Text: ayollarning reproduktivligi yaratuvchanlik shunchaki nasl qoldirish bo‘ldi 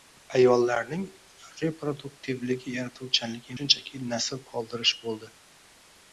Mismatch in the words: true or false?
false